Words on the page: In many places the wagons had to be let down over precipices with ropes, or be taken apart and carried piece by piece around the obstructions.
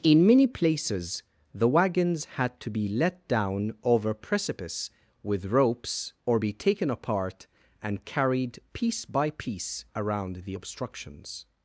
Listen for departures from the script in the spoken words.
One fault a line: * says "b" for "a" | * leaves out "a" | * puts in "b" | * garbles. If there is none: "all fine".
* says "precipice" for "precipices"